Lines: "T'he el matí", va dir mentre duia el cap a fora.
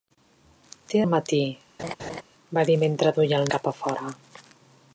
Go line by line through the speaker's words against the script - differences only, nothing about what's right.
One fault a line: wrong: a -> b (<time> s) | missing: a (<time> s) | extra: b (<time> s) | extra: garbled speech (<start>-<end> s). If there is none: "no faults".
no faults